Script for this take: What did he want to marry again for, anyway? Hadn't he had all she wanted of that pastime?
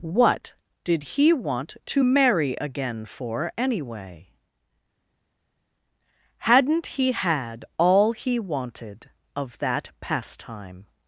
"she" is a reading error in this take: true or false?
true